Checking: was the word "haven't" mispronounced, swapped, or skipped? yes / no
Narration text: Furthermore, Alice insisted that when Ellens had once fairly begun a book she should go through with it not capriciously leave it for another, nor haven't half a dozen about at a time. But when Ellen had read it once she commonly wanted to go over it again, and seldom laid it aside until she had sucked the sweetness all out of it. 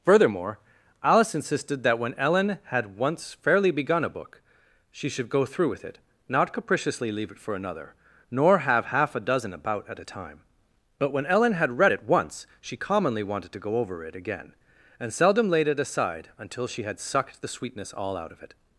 yes